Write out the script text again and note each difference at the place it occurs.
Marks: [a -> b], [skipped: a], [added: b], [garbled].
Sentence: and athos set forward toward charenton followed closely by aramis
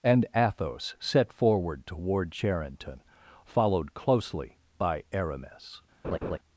and athos set forward toward charenton followed closely by aramis